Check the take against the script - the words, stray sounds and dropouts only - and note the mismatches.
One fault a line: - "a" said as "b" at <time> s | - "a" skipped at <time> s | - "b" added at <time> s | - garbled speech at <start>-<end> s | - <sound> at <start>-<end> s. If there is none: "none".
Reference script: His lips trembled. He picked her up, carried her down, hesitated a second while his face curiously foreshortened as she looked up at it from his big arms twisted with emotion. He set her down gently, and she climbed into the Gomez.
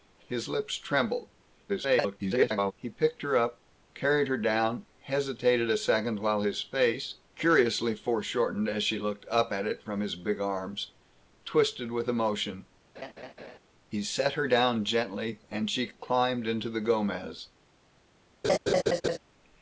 - garbled speech at 1.7-2.7 s
- laugh at 12.9-13.6 s
- laugh at 18.4-19.2 s